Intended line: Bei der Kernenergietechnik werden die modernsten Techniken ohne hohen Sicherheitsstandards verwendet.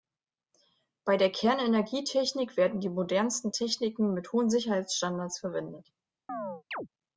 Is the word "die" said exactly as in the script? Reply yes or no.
yes